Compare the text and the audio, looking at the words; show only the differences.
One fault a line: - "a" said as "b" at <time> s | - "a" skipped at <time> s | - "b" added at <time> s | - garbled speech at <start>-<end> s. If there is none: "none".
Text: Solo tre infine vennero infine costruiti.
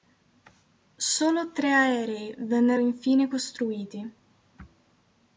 - "infine" said as "aerei" at 1.7 s